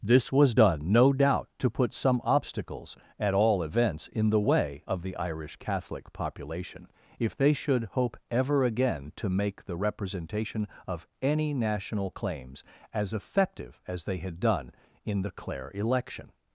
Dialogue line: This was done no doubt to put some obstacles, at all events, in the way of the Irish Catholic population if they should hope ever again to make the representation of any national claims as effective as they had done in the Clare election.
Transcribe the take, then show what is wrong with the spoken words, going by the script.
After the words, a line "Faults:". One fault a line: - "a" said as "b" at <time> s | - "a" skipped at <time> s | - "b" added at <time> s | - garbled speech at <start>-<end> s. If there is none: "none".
This was done no doubt to put some obstacles, at all events, in the way of the Irish Catholic population if they should hope ever again to make the representation of any national claims as effective as they had done in the Clare election.
Faults:
none